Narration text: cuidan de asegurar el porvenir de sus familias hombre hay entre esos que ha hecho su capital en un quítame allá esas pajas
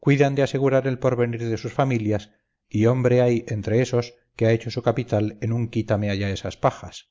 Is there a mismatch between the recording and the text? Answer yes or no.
yes